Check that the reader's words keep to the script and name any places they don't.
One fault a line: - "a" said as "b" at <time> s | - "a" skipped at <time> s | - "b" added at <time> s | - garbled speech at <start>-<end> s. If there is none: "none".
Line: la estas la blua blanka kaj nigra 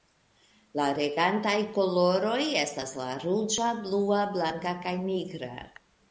- "regantaj koloroj" added at 1.0 s
- "ruĝa" added at 3.2 s